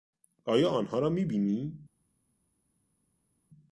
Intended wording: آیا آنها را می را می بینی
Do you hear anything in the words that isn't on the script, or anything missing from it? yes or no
yes